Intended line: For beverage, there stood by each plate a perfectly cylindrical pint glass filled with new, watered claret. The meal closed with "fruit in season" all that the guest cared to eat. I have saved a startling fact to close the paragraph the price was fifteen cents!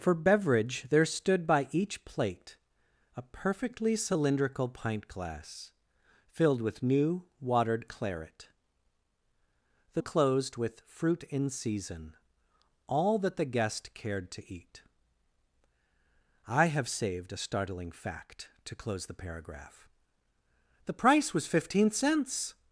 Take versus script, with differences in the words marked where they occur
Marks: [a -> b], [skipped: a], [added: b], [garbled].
For beverage, there stood by each plate a perfectly cylindrical pint glass filled with new, watered claret. The [skipped: meal] closed with "fruit in season" all that the guest cared to eat. I have saved a startling fact to close the paragraph the price was fifteen cents!